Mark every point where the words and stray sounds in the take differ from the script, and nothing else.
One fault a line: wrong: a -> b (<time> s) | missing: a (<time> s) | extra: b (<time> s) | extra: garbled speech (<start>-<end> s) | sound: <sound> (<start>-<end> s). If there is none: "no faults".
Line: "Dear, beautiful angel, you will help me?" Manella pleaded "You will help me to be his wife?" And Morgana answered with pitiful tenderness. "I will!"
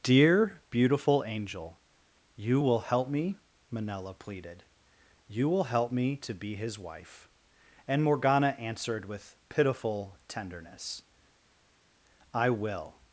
no faults